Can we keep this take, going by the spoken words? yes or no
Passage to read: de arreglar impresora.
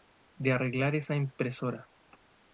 no